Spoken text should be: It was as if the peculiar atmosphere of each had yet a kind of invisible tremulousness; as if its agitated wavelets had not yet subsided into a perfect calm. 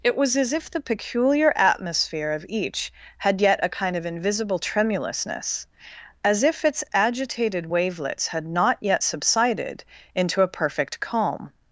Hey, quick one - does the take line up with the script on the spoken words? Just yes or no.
yes